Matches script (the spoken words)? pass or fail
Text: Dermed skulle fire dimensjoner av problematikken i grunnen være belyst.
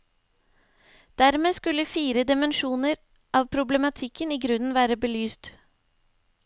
pass